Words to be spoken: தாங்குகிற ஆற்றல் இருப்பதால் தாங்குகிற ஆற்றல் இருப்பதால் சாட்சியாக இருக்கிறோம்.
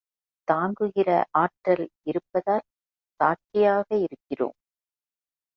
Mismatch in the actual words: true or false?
true